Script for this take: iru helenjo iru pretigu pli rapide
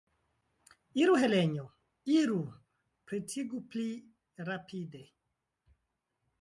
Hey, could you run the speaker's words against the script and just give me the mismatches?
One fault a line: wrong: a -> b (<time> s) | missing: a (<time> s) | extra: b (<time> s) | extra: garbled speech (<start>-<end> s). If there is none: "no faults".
no faults